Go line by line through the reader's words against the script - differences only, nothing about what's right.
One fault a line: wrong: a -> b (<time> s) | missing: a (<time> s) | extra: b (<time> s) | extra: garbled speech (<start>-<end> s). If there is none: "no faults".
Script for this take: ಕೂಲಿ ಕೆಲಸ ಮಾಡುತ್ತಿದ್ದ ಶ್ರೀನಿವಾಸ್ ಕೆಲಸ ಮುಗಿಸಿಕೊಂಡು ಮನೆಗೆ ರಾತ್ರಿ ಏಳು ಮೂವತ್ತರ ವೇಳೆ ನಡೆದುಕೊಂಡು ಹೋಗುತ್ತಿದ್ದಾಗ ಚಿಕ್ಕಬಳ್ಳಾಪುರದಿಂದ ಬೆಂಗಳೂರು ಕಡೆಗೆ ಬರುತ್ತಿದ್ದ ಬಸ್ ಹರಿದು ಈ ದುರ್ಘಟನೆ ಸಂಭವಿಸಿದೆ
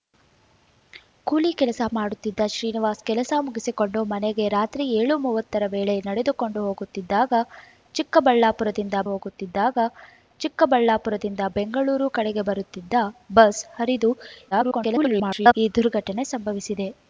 extra: ಹೋಗುತ್ತಿದ್ದಾಗ ಚಿಕ್ಕಬಳ್ಳಾಪುರದಿಂದ (9.1 s)
extra: garbled speech (14.5-15.5 s)